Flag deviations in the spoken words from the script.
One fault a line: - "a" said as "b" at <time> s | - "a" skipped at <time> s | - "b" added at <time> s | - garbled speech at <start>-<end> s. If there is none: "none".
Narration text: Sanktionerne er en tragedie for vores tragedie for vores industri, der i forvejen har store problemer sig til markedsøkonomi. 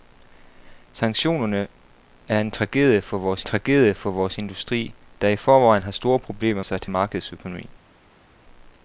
none